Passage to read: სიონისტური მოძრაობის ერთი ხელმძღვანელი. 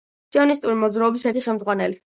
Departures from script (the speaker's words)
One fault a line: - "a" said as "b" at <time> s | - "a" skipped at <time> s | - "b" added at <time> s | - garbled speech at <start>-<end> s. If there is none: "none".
none